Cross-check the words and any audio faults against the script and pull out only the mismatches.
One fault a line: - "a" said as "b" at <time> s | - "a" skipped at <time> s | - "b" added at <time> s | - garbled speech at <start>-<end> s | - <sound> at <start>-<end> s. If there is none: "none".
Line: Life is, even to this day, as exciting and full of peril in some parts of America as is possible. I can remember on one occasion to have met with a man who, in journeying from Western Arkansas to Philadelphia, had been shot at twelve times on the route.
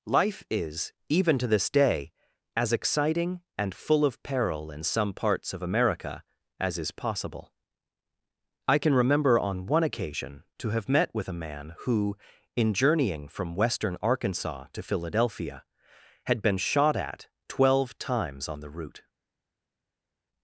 none